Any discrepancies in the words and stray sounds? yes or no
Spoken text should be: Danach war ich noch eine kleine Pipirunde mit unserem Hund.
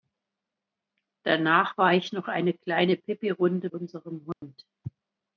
yes